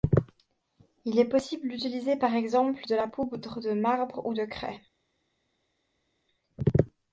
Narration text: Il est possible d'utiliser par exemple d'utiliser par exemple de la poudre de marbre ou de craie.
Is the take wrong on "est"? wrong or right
right